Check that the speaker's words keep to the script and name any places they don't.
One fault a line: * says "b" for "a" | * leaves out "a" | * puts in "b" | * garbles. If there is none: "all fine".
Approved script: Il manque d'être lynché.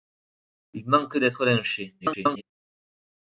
* garbles